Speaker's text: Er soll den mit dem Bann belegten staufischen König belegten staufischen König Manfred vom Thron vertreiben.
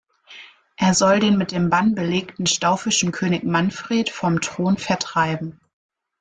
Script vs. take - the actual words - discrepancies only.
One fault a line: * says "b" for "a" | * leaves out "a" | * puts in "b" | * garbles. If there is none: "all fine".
* leaves out "belegten staufischen König"